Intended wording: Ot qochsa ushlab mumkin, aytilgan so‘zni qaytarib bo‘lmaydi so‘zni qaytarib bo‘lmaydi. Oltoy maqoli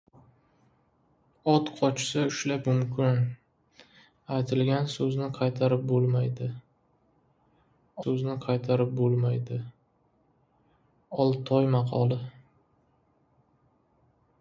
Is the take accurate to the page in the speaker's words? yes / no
yes